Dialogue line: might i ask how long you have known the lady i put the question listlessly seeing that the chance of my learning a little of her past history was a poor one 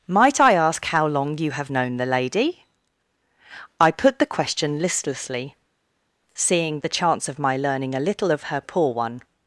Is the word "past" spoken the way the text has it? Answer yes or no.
no